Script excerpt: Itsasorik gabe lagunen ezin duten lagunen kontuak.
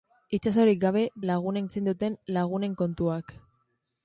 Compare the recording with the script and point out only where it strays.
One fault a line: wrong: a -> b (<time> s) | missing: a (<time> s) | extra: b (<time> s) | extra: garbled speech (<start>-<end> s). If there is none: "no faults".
no faults